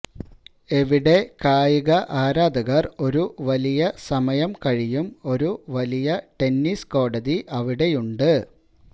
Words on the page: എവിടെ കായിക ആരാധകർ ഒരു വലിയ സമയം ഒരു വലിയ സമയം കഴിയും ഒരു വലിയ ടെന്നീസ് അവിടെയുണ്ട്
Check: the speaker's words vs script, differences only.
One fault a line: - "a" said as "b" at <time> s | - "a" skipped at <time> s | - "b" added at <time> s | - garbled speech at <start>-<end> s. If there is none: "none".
- "ഒരു വലിയ സമയം" skipped at 4.5 s
- "കോടതി" added at 6.9 s